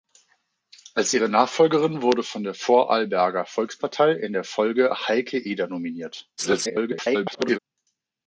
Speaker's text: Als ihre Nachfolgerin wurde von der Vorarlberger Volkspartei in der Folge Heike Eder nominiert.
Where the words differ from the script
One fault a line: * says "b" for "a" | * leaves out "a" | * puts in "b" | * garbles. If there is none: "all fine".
* garbles